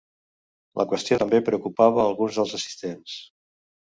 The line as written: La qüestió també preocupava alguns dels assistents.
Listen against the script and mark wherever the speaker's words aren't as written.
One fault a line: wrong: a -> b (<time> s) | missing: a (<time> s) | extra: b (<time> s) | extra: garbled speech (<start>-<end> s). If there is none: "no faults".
no faults